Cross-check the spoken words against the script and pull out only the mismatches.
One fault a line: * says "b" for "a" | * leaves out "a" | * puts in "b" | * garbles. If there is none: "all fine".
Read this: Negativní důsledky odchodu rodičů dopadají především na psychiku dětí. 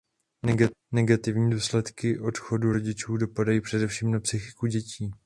all fine